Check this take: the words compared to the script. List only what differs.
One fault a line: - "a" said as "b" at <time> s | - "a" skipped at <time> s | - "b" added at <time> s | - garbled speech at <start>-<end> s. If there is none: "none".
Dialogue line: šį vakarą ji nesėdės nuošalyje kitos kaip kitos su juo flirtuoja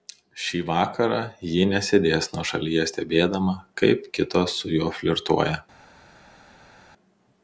- "kitos" said as "stebėdama" at 2.9 s